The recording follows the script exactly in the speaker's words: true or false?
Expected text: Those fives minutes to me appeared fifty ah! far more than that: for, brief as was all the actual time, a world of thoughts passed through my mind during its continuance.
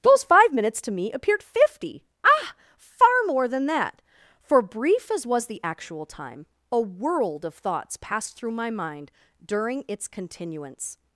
false